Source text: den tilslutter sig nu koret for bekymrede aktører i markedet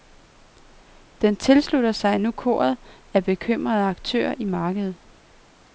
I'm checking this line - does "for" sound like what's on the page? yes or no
no